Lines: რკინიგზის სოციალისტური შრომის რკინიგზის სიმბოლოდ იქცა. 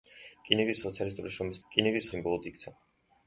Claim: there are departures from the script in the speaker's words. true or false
false